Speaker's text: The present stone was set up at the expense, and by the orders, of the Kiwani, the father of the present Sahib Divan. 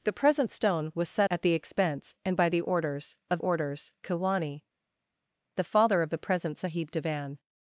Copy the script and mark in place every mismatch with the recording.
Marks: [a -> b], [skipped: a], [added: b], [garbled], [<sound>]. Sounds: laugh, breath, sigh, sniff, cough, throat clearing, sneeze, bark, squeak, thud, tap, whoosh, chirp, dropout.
The present stone was set [skipped: up] at the expense, and by the orders, of [the -> orders] Kiwani, the father of the present Sahib Divan.